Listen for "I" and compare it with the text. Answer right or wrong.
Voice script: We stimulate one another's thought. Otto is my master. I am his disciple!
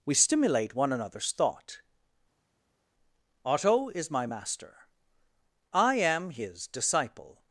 right